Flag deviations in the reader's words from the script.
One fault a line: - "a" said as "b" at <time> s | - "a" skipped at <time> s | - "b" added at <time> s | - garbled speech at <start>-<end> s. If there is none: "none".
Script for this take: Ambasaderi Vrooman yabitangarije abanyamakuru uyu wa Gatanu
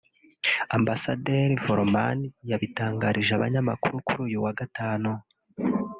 - "kuri" added at 4.1 s